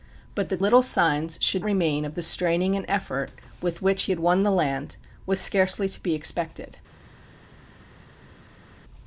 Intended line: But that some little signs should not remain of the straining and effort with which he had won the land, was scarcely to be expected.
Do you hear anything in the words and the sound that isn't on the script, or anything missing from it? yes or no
yes